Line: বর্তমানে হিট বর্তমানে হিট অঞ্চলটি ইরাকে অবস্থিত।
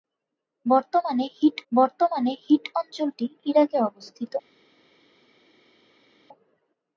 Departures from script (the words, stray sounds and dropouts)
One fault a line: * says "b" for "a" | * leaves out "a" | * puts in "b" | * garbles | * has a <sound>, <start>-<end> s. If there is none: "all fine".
all fine